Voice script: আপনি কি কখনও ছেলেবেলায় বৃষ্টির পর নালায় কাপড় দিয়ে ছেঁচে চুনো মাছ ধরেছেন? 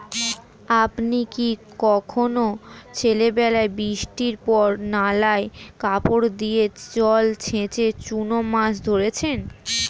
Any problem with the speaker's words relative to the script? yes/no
yes